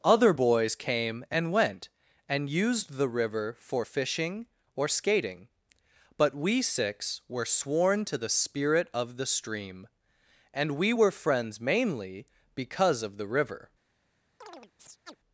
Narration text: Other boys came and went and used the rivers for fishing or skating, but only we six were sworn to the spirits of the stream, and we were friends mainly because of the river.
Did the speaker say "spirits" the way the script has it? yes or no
no